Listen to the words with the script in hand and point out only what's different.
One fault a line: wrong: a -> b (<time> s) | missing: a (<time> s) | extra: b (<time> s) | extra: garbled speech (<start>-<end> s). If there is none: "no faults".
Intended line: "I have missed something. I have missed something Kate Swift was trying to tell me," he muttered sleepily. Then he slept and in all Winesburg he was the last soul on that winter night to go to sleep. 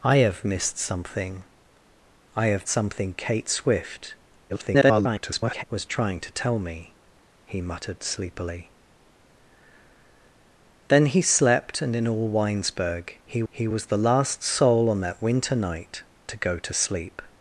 missing: missed (2.7 s)
extra: garbled speech (4.5-5.6 s)
extra: he (13.5 s)